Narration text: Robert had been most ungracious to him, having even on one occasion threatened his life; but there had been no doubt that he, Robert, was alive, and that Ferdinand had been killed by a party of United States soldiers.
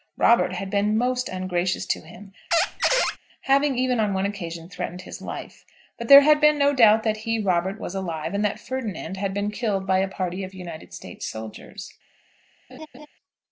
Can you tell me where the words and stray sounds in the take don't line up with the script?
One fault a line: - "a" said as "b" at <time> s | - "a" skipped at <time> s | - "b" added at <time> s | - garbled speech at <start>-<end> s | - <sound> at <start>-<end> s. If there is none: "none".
- squeak at 2.5-3.2 s
- laugh at 12.7-13.1 s